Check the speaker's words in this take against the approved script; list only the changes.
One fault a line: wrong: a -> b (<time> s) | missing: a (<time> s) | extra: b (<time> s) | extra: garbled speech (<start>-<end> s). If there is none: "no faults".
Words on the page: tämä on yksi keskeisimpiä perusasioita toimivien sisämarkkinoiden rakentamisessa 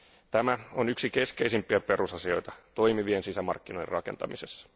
no faults